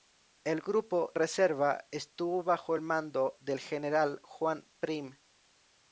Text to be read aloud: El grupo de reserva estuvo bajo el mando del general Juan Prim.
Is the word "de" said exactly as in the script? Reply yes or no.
no